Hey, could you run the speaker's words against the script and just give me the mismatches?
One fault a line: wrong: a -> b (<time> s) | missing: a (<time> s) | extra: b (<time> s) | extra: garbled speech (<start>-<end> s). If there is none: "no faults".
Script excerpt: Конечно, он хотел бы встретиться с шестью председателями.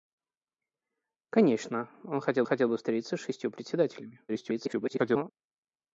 extra: хотел (2.4 s)
extra: garbled speech (4.3-5.3 s)